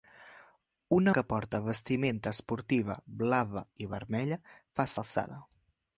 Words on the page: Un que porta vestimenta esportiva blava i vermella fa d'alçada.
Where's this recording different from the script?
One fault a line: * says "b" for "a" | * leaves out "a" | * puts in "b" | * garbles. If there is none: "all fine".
all fine